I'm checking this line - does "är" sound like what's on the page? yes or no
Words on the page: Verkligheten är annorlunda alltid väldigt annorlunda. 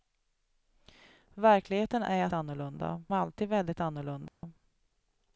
yes